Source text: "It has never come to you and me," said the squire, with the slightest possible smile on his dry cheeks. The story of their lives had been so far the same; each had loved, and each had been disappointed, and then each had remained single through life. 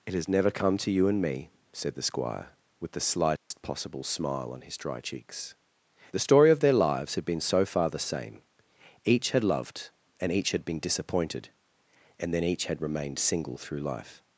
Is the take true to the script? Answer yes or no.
yes